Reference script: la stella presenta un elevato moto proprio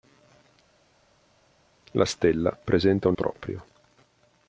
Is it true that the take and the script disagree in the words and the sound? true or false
true